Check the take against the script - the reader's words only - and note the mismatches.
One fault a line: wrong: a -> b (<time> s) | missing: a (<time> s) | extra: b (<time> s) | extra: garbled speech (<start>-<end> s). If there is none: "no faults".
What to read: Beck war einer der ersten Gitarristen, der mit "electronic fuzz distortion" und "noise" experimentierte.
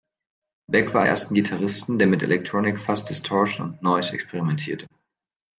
missing: einer der (1.0 s)